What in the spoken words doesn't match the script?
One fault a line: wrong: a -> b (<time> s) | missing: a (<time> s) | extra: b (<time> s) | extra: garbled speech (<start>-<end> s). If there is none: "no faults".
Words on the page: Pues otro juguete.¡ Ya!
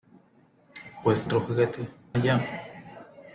no faults